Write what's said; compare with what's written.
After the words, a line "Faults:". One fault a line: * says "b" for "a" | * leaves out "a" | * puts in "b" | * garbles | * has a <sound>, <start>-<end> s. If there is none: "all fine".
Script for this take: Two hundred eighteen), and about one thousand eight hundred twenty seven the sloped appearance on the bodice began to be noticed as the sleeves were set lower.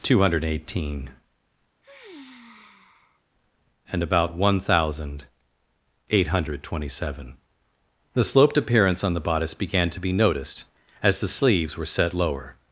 Two hundred eighteen), and about one thousand eight hundred twenty seven the sloped appearance on the bodice began to be noticed as the sleeves were set lower.
Faults:
* has a sigh, 1.8-3.2 s